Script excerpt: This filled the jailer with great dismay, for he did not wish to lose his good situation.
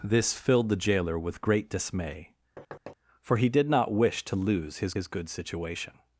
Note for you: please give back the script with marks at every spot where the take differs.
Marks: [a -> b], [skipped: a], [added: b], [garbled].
This filled the jailer with great dismay, for he did not wish to lose his [added: his] good situation.